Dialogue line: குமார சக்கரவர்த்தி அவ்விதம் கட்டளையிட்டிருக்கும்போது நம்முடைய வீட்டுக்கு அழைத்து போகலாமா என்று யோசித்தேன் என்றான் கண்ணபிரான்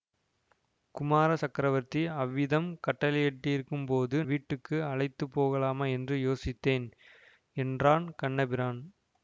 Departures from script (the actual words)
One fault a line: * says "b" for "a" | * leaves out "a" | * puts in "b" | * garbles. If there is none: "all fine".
* leaves out "நம்முடைய"